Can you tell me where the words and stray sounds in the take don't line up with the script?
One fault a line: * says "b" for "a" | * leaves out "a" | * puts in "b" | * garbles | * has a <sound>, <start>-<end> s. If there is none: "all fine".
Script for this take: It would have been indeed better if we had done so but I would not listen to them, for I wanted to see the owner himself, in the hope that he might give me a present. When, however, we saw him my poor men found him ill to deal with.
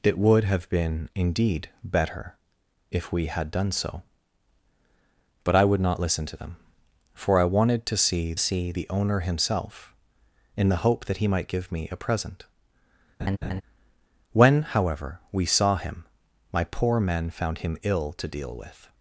* puts in "see"
* has a laugh, 13.2-13.6 s